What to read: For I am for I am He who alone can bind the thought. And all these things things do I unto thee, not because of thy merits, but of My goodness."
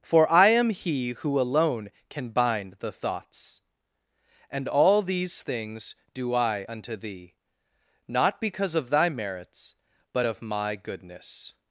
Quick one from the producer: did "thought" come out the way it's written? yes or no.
no